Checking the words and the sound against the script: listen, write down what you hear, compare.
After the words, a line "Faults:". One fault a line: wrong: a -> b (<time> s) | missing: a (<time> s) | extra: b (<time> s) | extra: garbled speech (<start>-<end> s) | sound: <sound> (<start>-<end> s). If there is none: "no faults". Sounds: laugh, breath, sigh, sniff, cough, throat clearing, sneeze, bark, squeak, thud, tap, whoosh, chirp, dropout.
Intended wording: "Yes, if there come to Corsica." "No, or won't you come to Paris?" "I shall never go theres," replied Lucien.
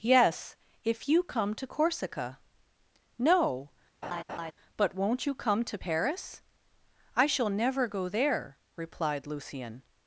"Yes, if you come to Corsica." "No, but won't you come to Paris?" "I shall never go there," replied Lucien.
Faults:
wrong: there -> you (1.1 s)
sound: laugh (4.0-4.5 s)
wrong: or -> but (4.8 s)
wrong: theres -> there (8.1 s)